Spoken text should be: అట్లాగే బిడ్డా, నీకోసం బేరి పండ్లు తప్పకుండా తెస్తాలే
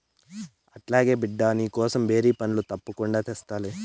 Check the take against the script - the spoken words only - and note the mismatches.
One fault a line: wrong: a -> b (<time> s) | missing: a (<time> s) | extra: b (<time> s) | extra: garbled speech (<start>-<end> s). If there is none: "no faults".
no faults